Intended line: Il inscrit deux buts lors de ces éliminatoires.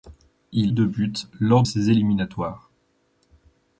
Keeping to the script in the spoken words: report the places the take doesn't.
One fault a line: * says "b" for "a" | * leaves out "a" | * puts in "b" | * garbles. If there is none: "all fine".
* leaves out "inscrit"
* leaves out "de"